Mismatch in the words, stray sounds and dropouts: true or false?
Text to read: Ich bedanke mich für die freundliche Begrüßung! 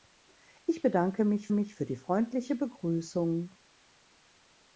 true